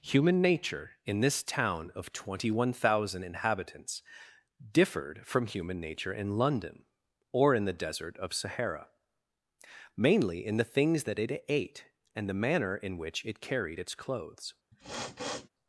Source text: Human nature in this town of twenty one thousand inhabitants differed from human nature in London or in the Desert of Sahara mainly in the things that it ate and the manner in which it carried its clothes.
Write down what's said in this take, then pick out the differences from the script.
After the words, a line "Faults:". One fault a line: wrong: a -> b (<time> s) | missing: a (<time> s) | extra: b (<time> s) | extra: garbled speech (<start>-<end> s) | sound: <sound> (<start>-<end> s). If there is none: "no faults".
Human nature in this town of twenty one thousand inhabitants differed from human nature in London or in the Desert of Sahara mainly in the things that it ate and the manner in which it carried its clothes.
Faults:
sound: sniff (14.7-15.5 s)